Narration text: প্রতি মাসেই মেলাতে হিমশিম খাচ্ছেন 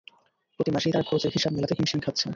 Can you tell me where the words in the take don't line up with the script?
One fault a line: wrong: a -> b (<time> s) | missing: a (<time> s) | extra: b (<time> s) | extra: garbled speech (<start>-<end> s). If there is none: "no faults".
extra: তাঁরা খরচের হিসাব (0.9 s)